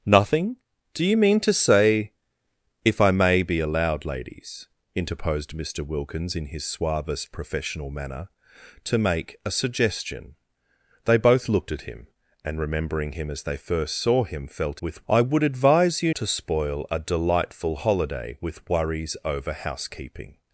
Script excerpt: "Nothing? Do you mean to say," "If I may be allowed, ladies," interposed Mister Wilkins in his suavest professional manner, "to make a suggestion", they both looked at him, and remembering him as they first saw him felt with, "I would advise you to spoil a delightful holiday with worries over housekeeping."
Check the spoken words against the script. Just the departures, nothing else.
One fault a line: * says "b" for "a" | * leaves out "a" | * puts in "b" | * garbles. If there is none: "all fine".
all fine